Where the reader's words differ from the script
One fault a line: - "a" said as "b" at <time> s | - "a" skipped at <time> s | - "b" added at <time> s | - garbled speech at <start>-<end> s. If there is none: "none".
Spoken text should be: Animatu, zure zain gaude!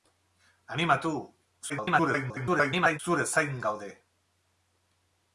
- garbled speech at 1.7-3.0 s